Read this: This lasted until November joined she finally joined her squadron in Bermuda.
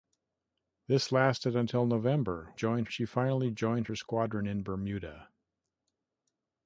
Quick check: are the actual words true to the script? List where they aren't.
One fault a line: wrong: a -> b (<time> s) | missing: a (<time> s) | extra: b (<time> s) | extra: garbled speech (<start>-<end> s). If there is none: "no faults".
no faults